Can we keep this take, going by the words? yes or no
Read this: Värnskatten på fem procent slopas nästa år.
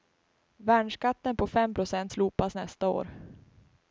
yes